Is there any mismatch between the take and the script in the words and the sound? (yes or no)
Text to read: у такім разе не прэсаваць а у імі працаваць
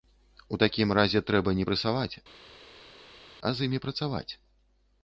yes